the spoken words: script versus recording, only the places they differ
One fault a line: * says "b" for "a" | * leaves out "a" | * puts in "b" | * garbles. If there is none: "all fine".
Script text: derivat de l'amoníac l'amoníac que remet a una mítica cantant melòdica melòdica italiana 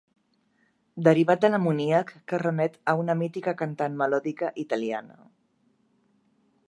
* leaves out "l'amoníac"
* leaves out "melòdica"